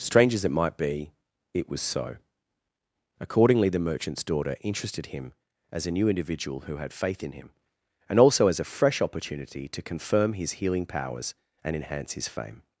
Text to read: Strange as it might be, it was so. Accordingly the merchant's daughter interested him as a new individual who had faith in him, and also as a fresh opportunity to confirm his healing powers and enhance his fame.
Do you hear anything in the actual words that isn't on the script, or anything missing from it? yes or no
no